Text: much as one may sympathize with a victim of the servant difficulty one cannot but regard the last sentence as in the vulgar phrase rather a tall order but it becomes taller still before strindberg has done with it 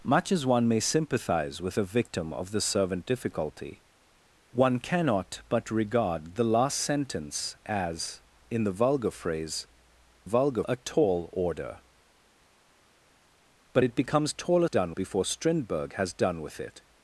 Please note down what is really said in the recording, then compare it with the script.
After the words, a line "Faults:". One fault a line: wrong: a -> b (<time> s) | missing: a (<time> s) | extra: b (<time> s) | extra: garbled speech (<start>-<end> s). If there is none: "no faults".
much as one may sympathize with a victim of the servant difficulty one cannot but regard the last sentence as in the vulgar phrase vulgar a tall order but it becomes taller done before strindberg has done with it
Faults:
wrong: rather -> vulgar (10.2 s)
wrong: still -> done (14.7 s)